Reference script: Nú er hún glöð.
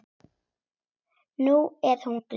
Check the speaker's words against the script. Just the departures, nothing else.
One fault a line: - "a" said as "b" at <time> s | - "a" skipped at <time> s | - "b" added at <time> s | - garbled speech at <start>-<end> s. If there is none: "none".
none